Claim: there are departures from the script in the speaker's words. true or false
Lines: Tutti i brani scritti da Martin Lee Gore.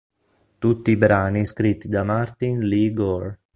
false